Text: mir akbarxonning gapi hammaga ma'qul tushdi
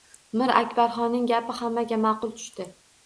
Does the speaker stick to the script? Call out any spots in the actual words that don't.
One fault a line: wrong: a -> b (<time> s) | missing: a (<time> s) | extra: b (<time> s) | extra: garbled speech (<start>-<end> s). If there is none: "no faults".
no faults